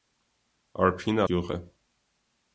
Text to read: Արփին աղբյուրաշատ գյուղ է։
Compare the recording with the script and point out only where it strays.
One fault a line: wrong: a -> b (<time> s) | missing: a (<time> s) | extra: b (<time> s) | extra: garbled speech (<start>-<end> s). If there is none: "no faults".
missing: աղբյուրաշատ (1.2 s)